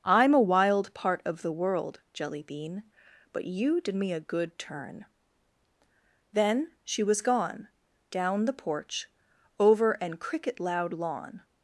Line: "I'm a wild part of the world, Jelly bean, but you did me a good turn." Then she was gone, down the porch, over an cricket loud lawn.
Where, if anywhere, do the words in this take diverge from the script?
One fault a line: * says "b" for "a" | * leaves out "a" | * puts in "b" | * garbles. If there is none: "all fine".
all fine